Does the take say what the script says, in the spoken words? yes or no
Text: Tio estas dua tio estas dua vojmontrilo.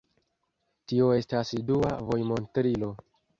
no